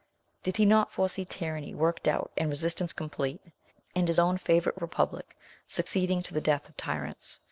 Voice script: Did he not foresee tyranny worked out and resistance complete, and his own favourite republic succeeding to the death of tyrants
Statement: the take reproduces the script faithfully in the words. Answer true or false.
true